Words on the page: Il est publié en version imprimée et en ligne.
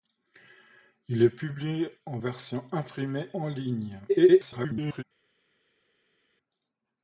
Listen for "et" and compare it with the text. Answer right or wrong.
wrong